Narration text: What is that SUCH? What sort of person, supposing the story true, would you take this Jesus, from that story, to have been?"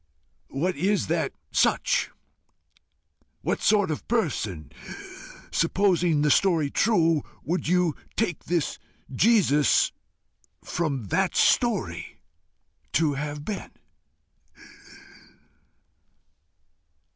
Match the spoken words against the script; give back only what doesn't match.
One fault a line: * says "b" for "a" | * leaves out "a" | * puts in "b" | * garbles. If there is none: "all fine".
all fine